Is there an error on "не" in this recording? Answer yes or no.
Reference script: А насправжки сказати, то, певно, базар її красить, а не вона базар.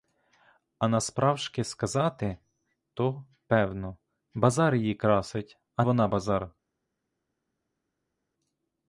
yes